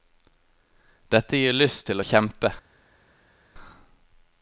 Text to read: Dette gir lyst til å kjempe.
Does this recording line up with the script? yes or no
yes